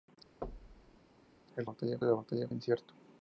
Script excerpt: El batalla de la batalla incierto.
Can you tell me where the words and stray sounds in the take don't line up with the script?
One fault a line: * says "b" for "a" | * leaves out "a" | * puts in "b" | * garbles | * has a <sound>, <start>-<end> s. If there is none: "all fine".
* has a thud, 0.4-1.0 s